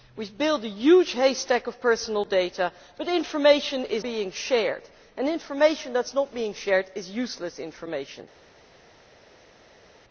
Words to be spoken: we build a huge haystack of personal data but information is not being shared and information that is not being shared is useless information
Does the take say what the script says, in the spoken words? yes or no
no